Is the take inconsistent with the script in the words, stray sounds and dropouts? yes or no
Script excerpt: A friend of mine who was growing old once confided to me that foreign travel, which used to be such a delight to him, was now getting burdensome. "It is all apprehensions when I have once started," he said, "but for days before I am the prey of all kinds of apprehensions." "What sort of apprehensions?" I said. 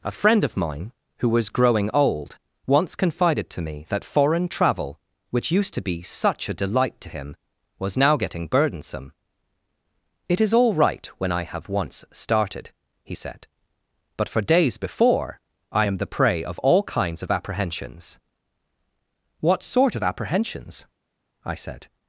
yes